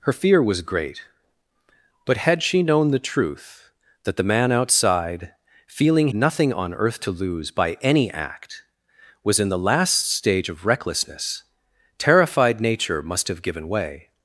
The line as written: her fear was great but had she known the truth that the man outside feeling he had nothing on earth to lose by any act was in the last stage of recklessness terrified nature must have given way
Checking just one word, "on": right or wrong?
right